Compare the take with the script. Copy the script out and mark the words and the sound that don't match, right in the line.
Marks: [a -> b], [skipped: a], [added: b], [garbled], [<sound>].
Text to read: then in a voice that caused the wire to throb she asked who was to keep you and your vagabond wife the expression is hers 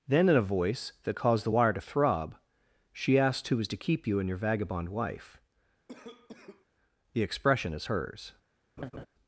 then in a voice that caused the wire to throb she asked who was to keep you and your vagabond wife [cough] the expression is hers [laugh]